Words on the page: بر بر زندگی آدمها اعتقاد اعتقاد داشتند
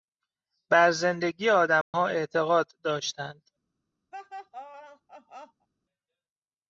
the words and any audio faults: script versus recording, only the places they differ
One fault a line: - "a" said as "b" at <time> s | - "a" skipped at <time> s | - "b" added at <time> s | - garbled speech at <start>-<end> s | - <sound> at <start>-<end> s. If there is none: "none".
- "بر" skipped at 0.9 s
- dropout at 1.8-1.9 s
- "اعتقاد" skipped at 2.7 s
- laugh at 4.1-5.7 s